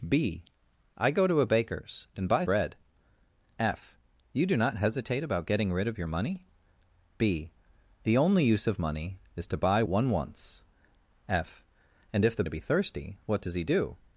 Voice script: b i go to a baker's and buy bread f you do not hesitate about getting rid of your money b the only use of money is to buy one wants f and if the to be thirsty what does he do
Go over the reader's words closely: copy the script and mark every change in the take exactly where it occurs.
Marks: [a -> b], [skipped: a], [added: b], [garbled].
b i go to a baker's and buy bread f you do not hesitate about getting rid of your money b the only use of money is to buy one wants f and if the to be thirsty what does he do